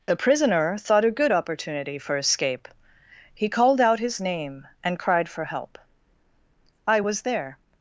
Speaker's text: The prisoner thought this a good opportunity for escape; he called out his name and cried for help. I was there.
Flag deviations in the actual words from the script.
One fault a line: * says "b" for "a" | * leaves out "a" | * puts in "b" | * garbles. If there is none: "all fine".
* leaves out "this"